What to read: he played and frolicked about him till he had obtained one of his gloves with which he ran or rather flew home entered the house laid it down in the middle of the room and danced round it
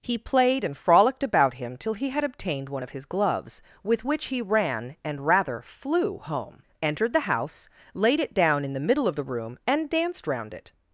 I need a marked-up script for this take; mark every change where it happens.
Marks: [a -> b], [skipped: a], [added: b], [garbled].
he played and frolicked about him till he had obtained one of his gloves with which he ran [or -> and] rather flew home entered the house laid it down in the middle of the room and danced round it